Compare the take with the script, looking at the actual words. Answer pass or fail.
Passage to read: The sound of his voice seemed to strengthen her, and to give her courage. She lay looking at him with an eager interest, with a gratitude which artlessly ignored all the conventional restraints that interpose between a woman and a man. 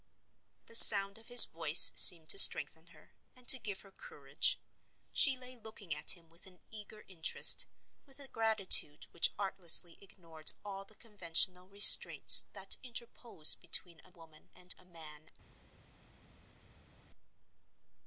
pass